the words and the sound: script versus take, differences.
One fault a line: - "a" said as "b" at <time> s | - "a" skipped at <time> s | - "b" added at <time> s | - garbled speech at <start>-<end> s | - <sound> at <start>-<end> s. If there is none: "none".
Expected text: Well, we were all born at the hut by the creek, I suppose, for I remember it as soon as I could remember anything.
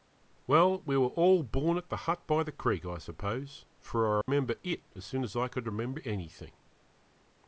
- dropout at 4.2-4.3 s